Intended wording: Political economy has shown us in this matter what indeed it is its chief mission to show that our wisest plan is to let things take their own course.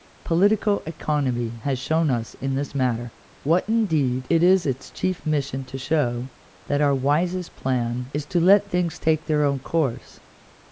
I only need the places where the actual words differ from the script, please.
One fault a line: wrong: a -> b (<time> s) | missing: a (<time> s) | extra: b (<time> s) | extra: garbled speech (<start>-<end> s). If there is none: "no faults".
no faults